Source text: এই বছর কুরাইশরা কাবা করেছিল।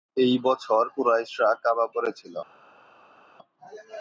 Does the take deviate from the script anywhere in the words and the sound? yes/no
no